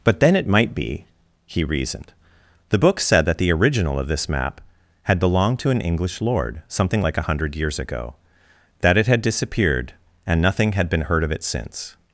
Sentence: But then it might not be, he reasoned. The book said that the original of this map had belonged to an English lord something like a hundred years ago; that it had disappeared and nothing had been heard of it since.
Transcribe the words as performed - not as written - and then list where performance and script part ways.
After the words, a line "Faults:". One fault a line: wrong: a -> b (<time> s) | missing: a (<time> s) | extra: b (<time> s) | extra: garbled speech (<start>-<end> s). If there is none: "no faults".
But then it might be, he reasoned. The book said that the original of this map had belonged to an English lord something like a hundred years ago; that it had disappeared and nothing had been heard of it since.
Faults:
missing: not (0.7 s)